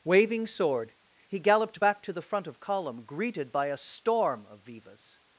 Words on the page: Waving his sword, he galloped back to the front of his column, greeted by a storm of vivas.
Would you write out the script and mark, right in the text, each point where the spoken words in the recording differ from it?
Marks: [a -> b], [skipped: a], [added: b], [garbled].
Waving [skipped: his] sword, he galloped back to the front of [skipped: his] column, greeted by a storm of vivas.